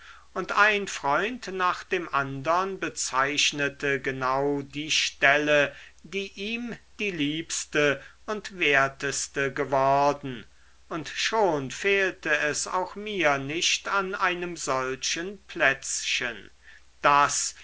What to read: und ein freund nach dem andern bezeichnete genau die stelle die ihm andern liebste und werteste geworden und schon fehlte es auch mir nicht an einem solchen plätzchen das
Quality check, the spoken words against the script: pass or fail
fail